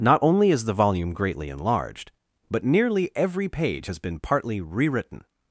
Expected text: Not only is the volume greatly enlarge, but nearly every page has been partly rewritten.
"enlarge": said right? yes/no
no